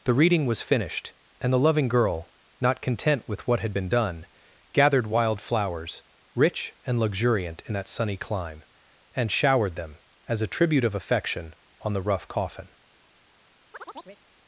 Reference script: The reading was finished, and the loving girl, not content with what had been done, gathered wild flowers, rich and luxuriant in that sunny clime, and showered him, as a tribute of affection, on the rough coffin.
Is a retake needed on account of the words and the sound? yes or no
yes